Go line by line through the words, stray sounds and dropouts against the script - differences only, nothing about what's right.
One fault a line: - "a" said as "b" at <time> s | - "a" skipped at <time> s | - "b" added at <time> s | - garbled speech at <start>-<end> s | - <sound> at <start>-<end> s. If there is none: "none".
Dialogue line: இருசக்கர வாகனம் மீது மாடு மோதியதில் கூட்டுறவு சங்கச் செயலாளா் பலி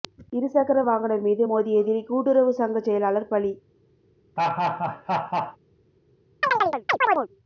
- "மாடு" skipped at 1.5 s
- laugh at 4.4-5.6 s
- chirp at 6.4-7.3 s